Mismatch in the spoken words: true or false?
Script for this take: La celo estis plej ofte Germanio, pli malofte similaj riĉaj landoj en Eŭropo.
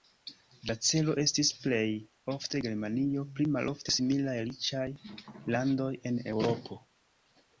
false